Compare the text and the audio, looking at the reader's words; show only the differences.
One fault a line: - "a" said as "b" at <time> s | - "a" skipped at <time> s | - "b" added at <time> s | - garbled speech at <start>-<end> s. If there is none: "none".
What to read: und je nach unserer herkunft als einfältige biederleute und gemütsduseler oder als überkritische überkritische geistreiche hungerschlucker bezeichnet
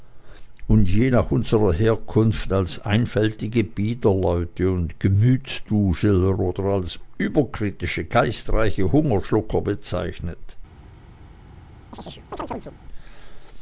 - "überkritische" skipped at 8.0 s